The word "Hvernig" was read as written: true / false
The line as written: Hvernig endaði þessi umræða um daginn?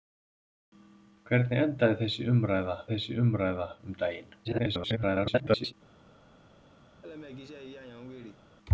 true